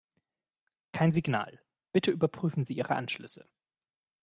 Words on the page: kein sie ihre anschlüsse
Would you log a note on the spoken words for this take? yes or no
yes